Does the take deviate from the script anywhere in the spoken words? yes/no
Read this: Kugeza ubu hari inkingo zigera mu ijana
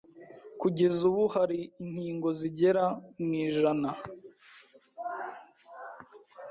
no